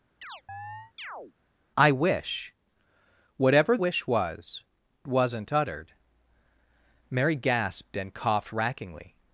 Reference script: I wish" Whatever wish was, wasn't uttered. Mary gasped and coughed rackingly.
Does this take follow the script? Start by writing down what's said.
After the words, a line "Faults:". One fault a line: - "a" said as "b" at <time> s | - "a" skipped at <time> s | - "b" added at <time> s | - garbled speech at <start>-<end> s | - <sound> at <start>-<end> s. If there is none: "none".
I wish" Whatever wish was, wasn't uttered. Mary gasped and coughed rackingly.
Faults:
- chirp at 0.2-1.3 s